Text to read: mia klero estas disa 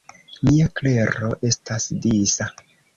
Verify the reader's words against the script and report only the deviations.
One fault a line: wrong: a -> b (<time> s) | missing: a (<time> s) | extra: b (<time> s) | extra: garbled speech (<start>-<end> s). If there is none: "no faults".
no faults